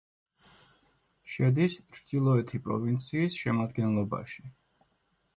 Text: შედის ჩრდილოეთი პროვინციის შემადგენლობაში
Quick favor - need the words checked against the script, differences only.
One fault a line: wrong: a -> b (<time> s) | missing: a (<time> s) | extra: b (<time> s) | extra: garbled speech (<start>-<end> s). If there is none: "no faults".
no faults